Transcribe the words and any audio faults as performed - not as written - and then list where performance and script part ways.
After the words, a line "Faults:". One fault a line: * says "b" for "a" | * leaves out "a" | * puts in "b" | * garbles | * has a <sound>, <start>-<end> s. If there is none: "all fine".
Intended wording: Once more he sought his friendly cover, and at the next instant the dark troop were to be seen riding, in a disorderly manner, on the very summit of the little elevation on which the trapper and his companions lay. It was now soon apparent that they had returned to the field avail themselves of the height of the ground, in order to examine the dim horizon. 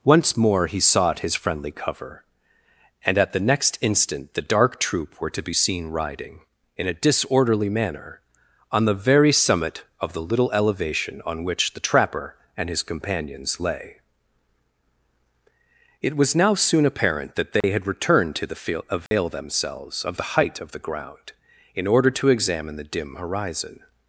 Once more he sought his friendly cover, and at the next instant the dark troop were to be seen riding, in a disorderly manner, on the very summit of the little elevation on which the trapper and his companions lay. It was now soon apparent that they had returned to the field avail themselves of the height of the ground, in order to examine the dim horizon.
Faults:
* has a dropout, 17.6-17.6 s
* has a dropout, 19.1-19.1 s